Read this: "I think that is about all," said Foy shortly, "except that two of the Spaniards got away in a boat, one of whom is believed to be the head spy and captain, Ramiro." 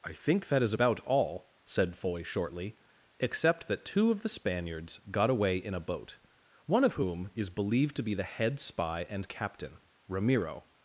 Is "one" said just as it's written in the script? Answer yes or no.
yes